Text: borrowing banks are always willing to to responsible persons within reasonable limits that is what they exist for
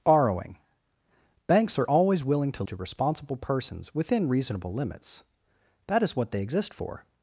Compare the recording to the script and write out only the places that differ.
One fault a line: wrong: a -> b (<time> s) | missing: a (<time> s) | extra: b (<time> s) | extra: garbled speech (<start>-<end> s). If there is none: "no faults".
no faults